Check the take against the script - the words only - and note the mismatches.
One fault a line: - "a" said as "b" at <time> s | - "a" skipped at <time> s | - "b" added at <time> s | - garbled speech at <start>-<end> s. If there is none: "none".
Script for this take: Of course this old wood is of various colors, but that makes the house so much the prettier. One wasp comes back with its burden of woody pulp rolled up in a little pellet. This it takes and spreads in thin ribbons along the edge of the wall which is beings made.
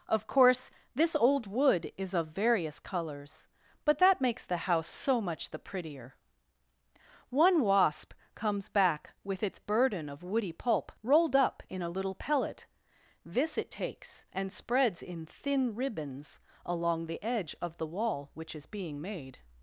- "beings" said as "being" at 18.7 s